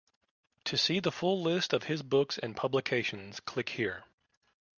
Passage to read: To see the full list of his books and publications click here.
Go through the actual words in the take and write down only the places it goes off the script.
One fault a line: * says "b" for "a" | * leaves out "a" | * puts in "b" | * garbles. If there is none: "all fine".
all fine